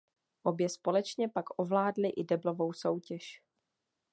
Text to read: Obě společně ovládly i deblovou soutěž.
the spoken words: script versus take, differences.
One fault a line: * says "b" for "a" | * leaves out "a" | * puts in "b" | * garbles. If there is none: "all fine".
* puts in "pak"